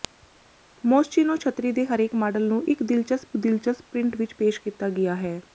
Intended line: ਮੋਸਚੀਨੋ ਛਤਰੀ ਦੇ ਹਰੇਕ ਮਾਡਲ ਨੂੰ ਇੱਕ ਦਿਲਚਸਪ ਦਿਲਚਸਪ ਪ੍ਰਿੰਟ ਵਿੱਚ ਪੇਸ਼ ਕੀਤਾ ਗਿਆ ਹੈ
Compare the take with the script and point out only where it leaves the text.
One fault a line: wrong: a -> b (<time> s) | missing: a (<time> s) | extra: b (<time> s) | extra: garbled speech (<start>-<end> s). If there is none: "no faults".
no faults